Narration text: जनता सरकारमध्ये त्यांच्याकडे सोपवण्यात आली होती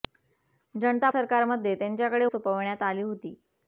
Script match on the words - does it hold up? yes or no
yes